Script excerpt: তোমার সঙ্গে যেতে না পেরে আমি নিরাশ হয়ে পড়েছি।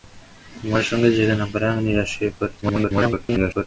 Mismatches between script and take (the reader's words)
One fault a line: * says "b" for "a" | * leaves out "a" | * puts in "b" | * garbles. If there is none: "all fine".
* garbles